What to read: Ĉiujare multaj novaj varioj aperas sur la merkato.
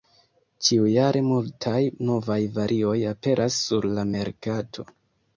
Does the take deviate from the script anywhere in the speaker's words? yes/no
no